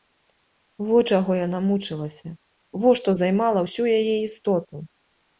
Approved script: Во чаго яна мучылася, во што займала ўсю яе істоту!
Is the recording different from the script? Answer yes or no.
no